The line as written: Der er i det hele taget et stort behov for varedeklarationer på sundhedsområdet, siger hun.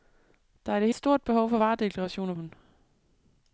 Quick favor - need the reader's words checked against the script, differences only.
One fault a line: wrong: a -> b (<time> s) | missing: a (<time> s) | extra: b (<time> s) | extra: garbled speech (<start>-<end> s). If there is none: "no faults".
missing: hele taget (0.9 s)
missing: på sundhedsområdet siger (2.3 s)